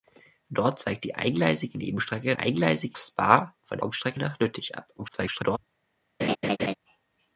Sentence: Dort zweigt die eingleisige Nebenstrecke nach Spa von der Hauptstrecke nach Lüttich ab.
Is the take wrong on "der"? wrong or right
wrong